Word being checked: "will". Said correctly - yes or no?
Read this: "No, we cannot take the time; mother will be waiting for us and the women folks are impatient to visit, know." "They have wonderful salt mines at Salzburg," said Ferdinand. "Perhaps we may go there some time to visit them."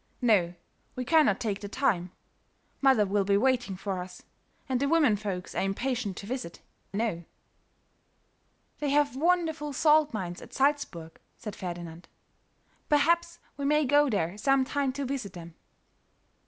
yes